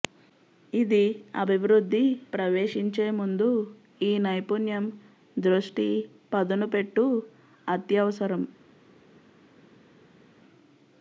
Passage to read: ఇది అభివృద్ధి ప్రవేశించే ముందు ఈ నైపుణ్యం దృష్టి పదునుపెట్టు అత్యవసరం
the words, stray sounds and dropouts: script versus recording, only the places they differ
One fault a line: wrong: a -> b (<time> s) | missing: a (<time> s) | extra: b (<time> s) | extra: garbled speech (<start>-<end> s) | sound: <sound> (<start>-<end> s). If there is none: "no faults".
no faults